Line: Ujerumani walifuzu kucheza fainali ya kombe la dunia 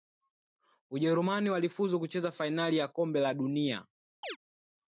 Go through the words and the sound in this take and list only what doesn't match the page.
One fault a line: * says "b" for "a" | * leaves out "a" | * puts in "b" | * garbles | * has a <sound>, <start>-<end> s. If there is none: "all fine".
* has a chirp, 4.2-4.4 s